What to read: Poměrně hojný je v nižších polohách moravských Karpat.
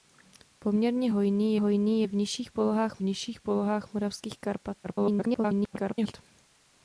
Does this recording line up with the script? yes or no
no